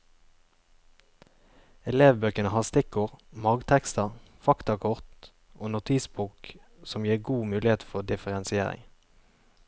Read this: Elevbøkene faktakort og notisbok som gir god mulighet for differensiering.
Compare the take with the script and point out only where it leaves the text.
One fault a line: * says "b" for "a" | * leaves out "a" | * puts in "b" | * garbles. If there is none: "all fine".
* puts in "har stikkord margtekster"